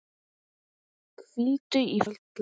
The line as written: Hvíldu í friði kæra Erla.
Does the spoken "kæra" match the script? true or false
false